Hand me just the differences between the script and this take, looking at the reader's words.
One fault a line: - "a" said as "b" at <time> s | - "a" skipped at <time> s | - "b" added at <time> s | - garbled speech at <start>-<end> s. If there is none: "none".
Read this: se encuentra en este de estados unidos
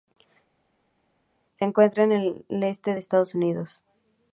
- "el" added at 2.1 s